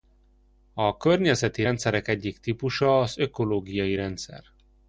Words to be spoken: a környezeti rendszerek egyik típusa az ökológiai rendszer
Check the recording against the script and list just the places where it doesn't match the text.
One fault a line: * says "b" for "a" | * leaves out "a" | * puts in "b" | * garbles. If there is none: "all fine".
all fine